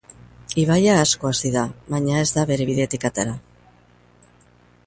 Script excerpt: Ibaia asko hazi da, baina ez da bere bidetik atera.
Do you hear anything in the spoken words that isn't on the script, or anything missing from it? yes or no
no